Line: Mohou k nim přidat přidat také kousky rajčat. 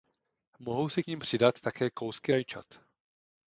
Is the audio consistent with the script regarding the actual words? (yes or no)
no